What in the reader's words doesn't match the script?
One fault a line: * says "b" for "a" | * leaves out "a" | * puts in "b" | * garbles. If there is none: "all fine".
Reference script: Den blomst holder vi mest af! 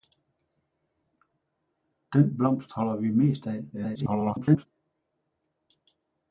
* garbles